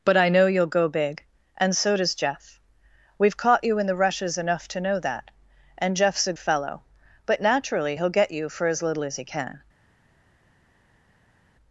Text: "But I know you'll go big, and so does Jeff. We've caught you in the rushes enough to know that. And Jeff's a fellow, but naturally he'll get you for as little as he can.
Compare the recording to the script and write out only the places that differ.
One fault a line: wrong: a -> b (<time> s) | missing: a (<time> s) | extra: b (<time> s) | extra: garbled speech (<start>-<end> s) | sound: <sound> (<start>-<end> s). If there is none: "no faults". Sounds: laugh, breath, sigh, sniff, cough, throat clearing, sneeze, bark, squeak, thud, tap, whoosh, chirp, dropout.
no faults